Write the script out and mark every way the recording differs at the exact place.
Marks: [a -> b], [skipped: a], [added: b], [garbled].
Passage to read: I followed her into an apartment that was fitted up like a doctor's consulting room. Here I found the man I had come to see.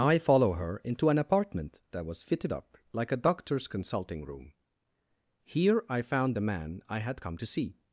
I [followed -> follow] her into an apartment that was fitted up like a doctor's consulting room. Here I found the man I had come to see.